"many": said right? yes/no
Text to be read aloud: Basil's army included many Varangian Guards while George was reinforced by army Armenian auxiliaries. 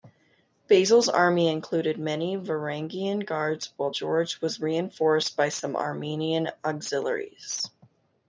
yes